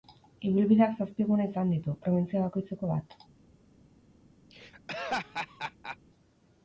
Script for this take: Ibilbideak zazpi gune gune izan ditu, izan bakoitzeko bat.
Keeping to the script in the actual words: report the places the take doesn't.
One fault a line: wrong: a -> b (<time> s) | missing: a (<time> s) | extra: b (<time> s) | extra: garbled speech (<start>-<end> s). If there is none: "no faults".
missing: gune (1.5 s)
wrong: izan -> probintzia (2.0 s)